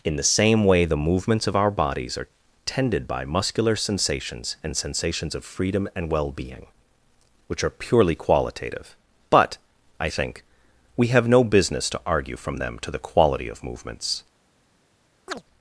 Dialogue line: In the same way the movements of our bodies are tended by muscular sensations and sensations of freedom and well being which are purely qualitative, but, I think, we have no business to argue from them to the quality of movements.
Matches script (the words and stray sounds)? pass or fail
fail